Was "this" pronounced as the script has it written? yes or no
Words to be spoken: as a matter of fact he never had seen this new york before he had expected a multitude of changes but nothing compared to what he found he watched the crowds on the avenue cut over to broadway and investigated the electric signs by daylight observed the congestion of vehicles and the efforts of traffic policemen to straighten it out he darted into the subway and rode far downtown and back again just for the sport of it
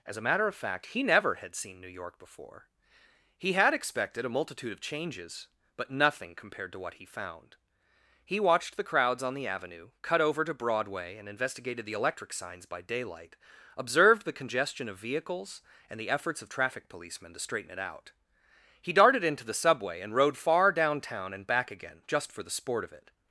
no